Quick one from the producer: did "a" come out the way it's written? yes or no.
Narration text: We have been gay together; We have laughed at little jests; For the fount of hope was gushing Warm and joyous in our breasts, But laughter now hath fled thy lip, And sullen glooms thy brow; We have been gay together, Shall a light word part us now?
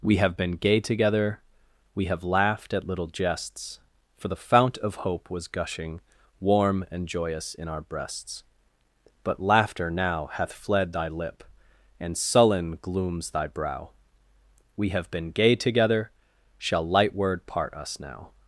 no